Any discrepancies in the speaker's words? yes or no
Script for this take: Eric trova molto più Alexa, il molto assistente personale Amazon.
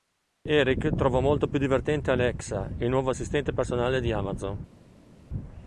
yes